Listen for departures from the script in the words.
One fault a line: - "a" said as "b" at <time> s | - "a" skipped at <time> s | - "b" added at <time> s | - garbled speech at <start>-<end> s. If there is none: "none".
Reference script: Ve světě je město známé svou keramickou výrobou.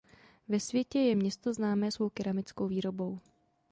none